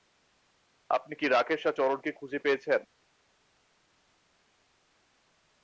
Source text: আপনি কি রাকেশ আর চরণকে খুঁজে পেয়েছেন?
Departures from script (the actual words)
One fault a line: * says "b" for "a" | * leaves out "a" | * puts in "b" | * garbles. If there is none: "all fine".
all fine